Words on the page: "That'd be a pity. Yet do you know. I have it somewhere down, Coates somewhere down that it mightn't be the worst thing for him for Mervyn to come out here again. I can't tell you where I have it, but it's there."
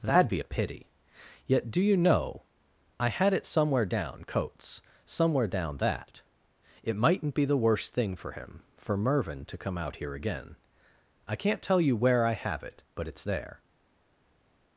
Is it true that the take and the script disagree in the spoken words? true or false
true